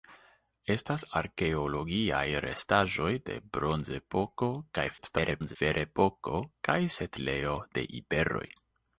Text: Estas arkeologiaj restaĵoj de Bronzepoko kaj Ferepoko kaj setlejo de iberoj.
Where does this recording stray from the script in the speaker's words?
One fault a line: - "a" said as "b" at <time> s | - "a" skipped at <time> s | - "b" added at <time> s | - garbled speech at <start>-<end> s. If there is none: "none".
- garbled speech at 5.0-5.6 s